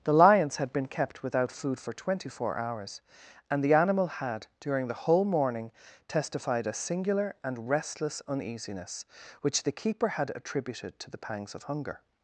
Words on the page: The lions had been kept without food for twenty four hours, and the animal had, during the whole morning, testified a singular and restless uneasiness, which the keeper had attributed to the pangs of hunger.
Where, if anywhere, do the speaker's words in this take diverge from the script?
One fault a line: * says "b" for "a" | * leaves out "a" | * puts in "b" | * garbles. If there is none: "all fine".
all fine